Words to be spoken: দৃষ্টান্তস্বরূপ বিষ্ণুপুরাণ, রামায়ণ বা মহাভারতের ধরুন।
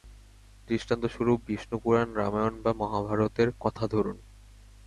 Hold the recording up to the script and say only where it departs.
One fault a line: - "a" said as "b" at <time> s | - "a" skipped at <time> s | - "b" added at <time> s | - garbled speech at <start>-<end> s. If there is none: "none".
- "কথা" added at 3.6 s